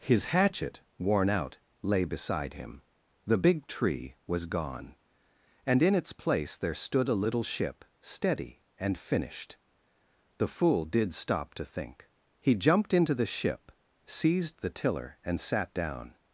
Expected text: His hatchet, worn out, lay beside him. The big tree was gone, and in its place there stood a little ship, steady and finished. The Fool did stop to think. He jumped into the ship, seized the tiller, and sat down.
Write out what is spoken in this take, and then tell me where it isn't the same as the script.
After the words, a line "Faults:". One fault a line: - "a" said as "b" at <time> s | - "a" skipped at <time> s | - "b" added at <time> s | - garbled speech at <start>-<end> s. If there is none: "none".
His hatchet, worn out, lay beside him. The big tree was gone, and in its place there stood a little ship, steady and finished. The Fool did stop to think. He jumped into the ship, seized the tiller, and sat down.
Faults:
none